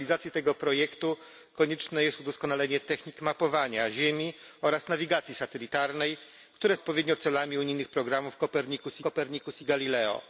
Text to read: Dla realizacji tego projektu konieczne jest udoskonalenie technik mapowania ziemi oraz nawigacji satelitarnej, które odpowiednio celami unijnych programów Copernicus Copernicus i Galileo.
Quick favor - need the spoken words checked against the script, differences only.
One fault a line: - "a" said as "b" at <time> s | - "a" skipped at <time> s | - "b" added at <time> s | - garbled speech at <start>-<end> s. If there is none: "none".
none